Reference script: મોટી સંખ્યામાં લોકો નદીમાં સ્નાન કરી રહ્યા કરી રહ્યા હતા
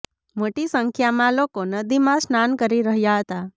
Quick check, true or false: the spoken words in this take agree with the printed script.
false